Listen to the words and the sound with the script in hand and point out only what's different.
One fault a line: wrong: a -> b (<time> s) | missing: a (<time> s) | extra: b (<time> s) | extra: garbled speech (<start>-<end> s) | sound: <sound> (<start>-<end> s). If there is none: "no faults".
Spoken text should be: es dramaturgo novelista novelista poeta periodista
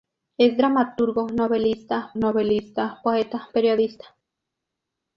no faults